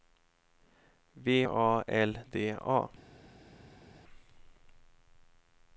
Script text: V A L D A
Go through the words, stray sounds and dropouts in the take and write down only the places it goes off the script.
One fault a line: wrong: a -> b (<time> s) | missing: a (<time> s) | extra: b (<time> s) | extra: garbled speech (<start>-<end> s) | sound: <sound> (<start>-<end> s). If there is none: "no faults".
no faults